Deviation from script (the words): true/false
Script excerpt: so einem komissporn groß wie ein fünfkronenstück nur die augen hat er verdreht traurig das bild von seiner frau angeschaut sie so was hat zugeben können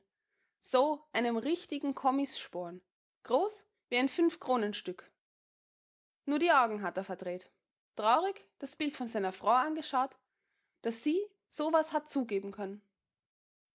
true